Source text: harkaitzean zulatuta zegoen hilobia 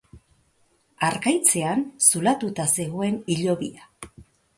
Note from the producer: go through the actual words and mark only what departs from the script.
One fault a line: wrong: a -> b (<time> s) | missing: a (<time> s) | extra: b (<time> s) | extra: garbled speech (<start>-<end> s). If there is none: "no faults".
no faults